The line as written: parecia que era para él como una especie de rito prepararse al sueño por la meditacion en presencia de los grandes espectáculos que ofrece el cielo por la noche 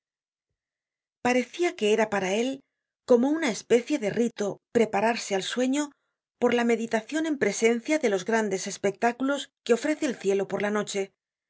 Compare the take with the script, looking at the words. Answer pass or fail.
pass